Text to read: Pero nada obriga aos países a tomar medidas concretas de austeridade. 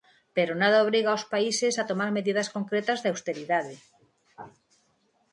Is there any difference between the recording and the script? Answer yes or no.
no